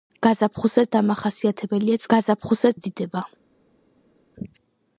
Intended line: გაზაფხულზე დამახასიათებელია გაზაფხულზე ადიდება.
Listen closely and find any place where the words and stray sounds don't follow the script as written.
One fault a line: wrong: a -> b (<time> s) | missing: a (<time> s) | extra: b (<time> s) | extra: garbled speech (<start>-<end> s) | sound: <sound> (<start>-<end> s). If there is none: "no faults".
no faults